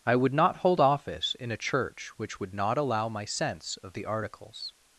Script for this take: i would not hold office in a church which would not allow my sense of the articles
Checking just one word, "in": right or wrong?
right